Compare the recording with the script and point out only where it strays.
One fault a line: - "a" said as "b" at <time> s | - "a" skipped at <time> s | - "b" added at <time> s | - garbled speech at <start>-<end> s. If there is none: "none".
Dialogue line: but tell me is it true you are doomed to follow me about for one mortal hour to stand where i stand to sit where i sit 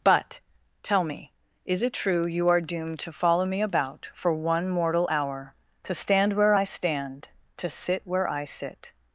none